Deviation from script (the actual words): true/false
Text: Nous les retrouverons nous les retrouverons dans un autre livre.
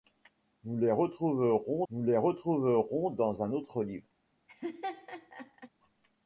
false